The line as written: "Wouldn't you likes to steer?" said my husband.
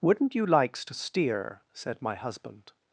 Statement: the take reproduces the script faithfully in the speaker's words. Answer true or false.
true